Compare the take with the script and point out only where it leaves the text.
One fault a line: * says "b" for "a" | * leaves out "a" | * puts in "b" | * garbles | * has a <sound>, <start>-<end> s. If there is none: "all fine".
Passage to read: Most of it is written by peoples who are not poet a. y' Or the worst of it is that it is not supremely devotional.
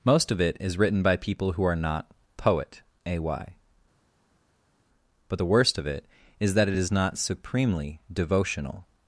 * says "people" for "peoples"
* says "But" for "Or"